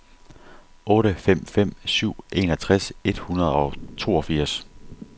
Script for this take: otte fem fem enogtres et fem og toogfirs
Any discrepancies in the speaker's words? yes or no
yes